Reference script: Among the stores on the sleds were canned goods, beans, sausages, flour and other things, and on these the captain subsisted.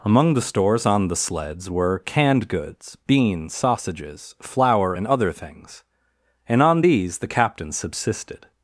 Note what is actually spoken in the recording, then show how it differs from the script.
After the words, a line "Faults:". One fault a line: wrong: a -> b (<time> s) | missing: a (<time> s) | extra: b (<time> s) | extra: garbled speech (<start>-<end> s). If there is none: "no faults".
Among the stores on the sleds were canned goods, beans, sausages, flour and other things, and on these the captain subsisted.
Faults:
no faults